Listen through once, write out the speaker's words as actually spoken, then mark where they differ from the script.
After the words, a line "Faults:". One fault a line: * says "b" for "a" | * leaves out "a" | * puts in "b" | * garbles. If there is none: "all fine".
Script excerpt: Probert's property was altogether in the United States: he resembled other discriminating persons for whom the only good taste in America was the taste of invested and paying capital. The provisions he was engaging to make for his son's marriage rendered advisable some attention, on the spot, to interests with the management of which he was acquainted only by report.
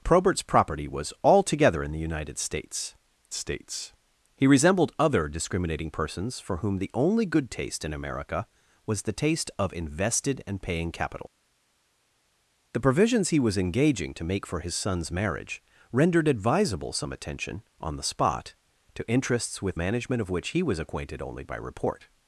Probert's property was altogether in the United States States: he resembled other discriminating persons for whom the only good taste in America was the taste of invested and paying capital. The provisions he was engaging to make for his son's marriage rendered advisable some attention, on the spot, to interests with management of which he was acquainted only by report.
Faults:
* puts in "States"
* leaves out "the"